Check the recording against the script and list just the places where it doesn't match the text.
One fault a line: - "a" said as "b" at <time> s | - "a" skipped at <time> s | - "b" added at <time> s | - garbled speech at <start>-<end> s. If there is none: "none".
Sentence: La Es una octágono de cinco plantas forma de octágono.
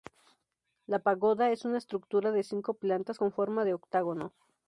- "Pagoda" added at 1.0 s
- "octágono" said as "estructura" at 1.8 s
- "con" added at 3.1 s